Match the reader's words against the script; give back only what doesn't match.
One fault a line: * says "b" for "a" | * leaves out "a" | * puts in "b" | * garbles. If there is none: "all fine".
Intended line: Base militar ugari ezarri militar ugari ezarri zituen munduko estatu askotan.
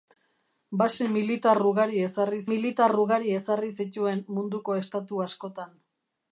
all fine